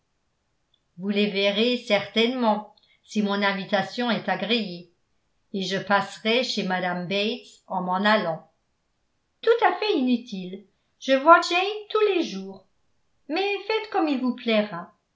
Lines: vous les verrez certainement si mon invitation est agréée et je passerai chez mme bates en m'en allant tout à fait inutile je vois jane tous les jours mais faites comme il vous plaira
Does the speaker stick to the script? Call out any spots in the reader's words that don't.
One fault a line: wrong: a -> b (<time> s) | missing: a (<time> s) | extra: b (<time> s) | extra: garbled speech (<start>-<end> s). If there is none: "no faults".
no faults